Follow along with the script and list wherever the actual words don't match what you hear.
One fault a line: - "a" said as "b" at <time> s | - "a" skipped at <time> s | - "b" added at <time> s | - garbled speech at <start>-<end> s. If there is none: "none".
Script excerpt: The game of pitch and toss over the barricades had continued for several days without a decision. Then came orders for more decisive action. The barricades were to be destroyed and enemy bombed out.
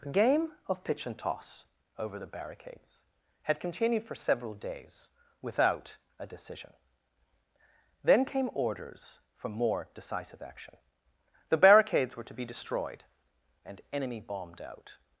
none